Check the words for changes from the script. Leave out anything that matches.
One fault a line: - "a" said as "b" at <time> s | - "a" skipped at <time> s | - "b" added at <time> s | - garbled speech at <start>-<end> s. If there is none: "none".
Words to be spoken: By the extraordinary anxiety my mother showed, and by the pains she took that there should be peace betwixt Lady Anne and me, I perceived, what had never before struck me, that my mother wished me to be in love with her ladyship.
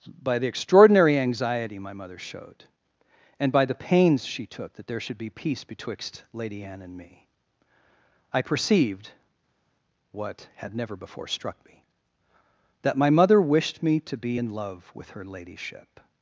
none